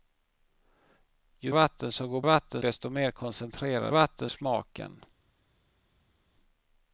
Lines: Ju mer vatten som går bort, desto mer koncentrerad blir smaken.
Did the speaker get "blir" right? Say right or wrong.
wrong